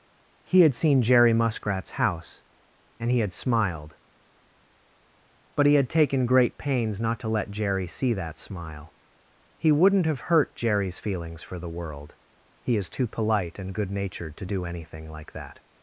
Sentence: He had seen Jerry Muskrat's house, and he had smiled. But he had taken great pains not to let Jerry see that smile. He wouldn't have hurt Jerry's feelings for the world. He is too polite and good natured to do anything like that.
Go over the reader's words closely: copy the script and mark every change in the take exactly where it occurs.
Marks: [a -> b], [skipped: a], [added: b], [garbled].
He had seen Jerry Muskrat's house, and he had smiled. But he had taken great pains not to let Jerry see that smile. He wouldn't have hurt Jerry's feelings for the world. He is too polite and good natured to do anything like that.